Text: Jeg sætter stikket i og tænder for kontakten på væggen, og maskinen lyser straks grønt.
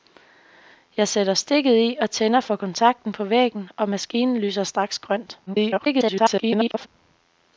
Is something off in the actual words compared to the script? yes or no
yes